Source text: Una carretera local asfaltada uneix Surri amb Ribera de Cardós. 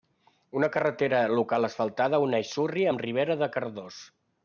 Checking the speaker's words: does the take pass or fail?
pass